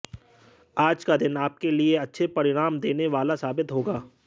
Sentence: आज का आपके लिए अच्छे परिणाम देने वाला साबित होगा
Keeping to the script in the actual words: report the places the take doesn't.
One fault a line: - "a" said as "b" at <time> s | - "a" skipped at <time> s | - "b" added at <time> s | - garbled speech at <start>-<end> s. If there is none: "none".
- "दिन" added at 1.1 s